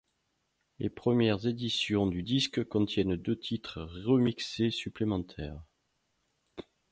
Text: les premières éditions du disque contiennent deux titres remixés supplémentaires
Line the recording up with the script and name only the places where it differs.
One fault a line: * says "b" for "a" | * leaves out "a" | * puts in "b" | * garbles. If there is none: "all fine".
all fine